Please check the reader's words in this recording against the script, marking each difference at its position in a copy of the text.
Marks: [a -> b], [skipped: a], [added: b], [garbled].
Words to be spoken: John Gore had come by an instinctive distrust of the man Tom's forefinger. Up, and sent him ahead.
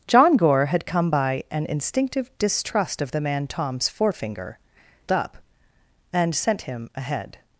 John Gore had come by an instinctive distrust of the man Tom's forefinger. Up, and sent him ahead.